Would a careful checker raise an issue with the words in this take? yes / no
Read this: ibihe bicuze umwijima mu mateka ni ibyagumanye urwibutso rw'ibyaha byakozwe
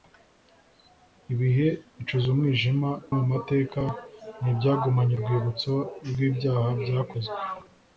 no